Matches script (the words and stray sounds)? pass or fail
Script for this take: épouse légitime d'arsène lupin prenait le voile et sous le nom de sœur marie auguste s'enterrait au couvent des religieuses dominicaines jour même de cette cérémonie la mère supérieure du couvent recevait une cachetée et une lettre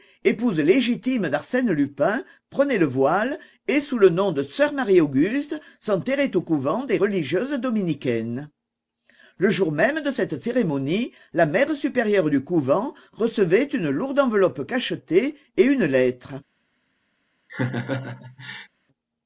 fail